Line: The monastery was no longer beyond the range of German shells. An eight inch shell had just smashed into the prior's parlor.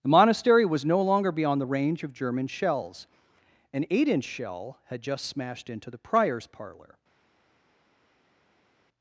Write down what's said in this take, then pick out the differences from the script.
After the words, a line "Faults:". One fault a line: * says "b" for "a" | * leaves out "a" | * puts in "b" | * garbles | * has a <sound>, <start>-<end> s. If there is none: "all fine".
The monastery was no longer beyond the range of German shells. An eight inch shell had just smashed into the prior's parlor.
Faults:
all fine